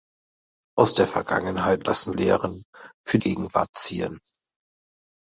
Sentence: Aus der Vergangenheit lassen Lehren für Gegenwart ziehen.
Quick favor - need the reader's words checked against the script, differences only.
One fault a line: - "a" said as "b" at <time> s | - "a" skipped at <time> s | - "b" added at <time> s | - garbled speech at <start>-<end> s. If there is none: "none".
none